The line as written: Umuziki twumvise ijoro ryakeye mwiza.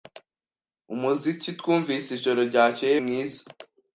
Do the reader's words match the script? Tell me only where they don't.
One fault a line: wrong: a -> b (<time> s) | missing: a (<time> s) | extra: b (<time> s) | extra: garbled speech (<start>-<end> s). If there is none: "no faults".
no faults